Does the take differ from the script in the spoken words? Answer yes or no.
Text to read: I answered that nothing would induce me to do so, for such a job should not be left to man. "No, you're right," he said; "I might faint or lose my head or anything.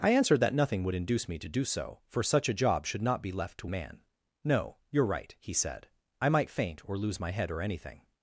no